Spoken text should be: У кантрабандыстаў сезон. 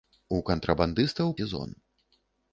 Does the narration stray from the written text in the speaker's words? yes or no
no